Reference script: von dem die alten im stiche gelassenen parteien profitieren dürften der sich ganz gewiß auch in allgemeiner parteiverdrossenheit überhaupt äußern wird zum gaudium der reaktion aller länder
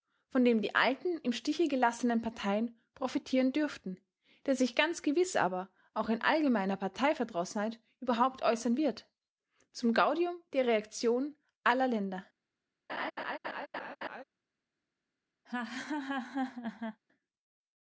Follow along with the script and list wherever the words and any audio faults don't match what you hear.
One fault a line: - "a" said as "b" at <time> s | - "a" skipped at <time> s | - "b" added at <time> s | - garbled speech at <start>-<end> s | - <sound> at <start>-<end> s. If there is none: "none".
- "aber" added at 5.4 s
- laugh at 12.9-14.2 s
- laugh at 15.5-17.0 s